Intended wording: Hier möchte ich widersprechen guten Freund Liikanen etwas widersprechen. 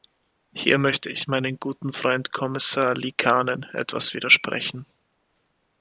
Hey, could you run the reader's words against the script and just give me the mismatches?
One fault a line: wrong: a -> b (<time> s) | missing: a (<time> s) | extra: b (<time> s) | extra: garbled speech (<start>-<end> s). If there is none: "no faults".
wrong: widersprechen -> meinem (1.3 s)
extra: Kommissar (2.3 s)